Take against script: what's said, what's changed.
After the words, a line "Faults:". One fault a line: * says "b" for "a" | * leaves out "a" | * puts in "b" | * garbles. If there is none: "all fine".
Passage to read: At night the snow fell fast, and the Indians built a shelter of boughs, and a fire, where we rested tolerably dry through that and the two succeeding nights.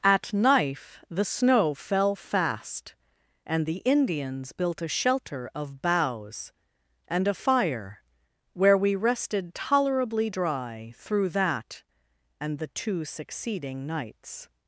At knife the snow fell fast, and the Indians built a shelter of boughs, and a fire, where we rested tolerably dry through that and the two succeeding nights.
Faults:
* says "knife" for "night"